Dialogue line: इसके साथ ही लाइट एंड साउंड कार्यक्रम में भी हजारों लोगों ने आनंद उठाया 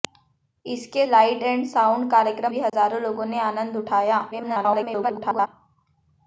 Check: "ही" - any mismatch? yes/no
yes